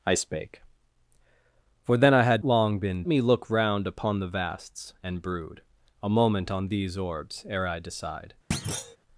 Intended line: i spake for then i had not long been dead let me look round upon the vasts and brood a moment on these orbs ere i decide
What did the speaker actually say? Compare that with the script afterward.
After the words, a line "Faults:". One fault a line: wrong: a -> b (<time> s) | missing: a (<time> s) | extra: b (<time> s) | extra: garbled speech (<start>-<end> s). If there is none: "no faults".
i spake for then i had long been me look round upon the vasts and brood a moment on these orbs ere i decide
Faults:
missing: not (2.4 s)
missing: dead let (3.0 s)